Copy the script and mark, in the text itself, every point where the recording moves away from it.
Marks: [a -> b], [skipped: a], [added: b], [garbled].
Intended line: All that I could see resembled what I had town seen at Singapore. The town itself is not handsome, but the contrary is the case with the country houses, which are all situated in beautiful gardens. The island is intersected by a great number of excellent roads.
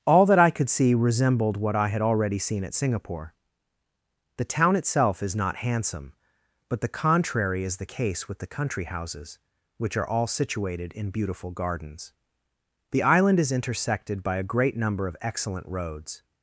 All that I could see resembled what I had [town -> already] seen at Singapore. The town itself is not handsome, but the contrary is the case with the country houses, which are all situated in beautiful gardens. The island is intersected by a great number of excellent roads.